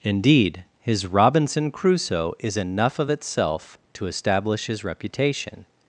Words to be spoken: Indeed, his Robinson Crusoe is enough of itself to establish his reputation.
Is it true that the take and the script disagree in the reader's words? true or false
false